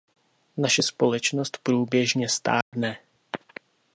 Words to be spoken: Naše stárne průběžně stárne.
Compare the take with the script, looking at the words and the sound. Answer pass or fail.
fail